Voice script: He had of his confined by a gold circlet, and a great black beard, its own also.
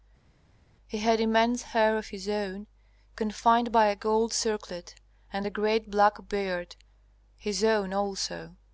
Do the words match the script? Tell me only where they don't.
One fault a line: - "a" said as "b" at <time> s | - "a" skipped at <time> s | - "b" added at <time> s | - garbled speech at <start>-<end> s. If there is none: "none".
- "immense hair" added at 1.2 s
- "own" added at 2.3 s
- "its" said as "his" at 7.4 s